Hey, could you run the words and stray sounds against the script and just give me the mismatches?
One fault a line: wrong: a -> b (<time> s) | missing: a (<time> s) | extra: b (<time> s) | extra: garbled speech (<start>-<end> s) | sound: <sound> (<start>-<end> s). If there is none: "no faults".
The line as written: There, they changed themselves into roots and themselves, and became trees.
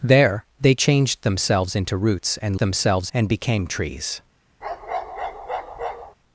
sound: bark (4.6-6.2 s)